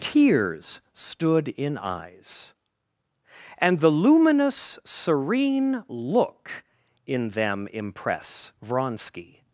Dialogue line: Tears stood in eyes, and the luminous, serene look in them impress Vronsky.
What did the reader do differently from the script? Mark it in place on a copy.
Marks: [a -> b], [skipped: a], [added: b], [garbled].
Tears stood in eyes, and the luminous, serene look in them impress Vronsky.